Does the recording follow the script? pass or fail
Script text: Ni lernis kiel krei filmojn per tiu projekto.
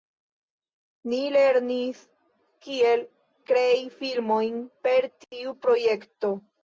pass